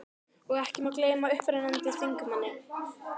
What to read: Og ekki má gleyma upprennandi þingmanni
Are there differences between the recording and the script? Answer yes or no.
no